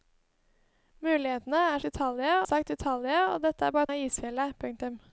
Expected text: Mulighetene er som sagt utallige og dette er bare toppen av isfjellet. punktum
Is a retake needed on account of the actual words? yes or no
yes